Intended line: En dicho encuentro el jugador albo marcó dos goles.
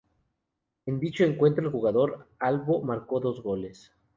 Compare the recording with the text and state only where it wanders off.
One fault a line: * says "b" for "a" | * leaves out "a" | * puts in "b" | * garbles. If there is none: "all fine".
all fine